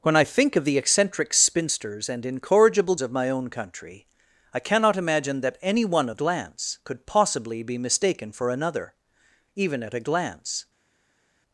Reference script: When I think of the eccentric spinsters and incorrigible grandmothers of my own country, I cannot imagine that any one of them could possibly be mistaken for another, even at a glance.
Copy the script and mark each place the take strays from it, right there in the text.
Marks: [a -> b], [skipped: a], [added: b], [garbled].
When I think of the eccentric spinsters and incorrigible [skipped: grandmothers] of my own country, I cannot imagine that any one of [them -> glance] could possibly be mistaken for another, even at a glance.